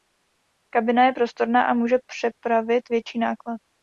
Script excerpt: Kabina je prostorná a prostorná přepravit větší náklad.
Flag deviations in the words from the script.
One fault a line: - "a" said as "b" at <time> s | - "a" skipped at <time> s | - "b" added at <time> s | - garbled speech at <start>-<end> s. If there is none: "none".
- "prostorná" said as "může" at 1.7 s